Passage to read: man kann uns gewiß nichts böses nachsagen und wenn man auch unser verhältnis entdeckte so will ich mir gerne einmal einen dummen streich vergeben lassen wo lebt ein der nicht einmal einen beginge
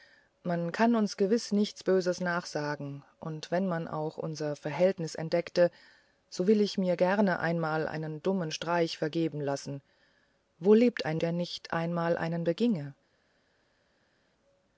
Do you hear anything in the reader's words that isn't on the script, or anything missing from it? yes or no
no